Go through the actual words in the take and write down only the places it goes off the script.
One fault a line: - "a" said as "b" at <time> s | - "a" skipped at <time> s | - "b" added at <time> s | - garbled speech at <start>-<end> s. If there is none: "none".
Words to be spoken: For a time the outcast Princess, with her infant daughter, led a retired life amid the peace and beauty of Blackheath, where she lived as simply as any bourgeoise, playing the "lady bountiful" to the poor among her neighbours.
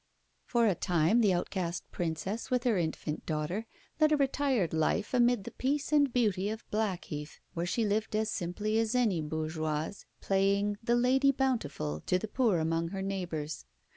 none